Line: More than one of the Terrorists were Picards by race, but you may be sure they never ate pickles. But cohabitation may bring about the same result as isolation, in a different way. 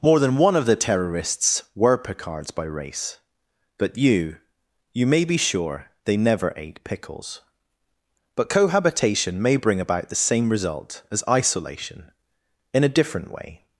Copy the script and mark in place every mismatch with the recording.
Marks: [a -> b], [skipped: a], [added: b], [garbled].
More than one of the Terrorists were Picards by race, but you [added: you] may be sure they never ate pickles. But cohabitation may bring about the same result as isolation, in a different way.